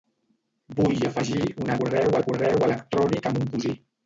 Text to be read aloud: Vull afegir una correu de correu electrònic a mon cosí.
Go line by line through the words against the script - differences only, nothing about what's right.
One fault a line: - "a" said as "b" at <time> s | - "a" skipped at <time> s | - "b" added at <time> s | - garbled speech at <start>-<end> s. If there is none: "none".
none